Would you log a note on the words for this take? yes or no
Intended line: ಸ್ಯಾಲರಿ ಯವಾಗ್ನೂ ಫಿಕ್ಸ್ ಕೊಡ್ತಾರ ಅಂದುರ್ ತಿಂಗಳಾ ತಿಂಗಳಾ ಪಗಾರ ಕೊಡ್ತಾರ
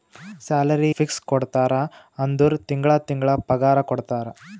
yes